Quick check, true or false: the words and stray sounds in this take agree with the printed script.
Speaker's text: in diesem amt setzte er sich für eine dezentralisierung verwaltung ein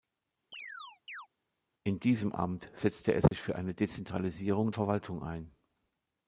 false